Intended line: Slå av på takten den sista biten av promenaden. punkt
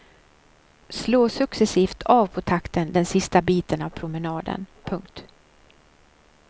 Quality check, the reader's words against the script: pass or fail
fail